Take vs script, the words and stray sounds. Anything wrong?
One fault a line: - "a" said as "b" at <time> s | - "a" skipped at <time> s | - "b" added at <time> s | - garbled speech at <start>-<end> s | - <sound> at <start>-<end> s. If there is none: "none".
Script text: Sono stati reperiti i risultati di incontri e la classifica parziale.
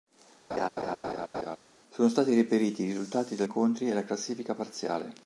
- laugh at 0.5-1.6 s